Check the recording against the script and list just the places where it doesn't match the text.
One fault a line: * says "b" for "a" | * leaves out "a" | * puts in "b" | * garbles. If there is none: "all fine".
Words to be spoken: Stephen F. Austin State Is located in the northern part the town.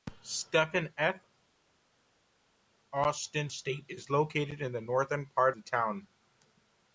all fine